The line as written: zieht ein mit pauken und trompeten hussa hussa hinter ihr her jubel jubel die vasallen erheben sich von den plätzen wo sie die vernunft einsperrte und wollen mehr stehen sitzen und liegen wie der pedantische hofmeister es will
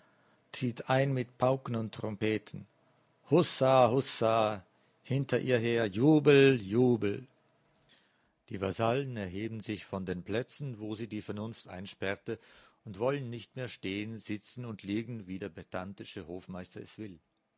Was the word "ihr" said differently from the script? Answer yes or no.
no